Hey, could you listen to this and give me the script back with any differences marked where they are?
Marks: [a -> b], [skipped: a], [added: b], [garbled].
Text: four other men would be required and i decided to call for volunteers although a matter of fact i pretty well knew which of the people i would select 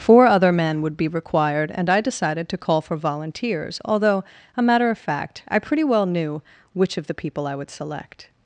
four other men would be required and i decided to call for volunteers although a matter of fact i pretty well knew which of the people i would select